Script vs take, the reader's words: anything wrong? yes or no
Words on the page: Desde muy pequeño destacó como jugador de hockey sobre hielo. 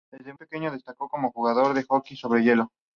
yes